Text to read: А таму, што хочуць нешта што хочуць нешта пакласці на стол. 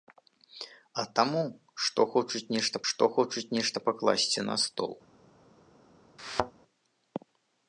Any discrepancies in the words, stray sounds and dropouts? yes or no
yes